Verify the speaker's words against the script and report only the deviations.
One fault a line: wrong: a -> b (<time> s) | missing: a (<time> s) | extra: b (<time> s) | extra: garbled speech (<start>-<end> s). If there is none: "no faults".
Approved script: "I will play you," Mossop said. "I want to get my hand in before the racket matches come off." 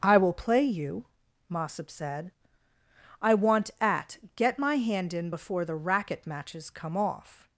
wrong: to -> at (3.8 s)